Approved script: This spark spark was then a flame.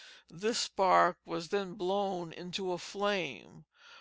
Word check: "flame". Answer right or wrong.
right